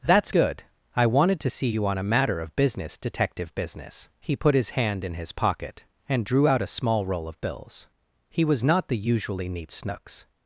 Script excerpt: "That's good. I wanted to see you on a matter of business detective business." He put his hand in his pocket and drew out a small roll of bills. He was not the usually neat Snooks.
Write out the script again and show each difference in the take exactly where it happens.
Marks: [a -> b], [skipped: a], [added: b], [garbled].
"That's good. I wanted to see you on a matter of business detective business." He put his hand in his pocket and drew out a small roll of bills. He was not the usually neat Snooks.